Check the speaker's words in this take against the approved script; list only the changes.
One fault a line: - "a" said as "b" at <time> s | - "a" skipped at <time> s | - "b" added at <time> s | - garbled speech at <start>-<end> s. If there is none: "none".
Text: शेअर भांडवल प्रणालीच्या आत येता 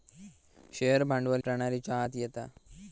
none